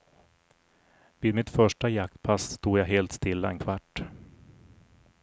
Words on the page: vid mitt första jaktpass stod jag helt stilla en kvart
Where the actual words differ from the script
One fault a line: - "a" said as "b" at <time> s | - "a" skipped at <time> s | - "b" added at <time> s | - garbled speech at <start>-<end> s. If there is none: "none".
none